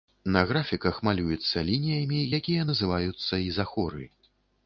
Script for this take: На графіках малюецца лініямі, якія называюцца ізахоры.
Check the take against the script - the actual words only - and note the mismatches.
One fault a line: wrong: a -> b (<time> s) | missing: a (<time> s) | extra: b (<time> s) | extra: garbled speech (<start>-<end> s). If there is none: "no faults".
no faults